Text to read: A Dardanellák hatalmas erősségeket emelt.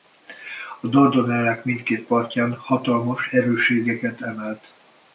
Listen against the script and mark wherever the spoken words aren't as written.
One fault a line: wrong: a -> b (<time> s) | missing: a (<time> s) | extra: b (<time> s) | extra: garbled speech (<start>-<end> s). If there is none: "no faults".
extra: mindkét partján (1.6 s)